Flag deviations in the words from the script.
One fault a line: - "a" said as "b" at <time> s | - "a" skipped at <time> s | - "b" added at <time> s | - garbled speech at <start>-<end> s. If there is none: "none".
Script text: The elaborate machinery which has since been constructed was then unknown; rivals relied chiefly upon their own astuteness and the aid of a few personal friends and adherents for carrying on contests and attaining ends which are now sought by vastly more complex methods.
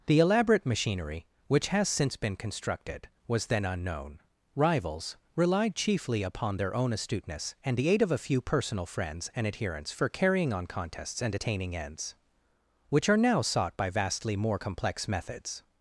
none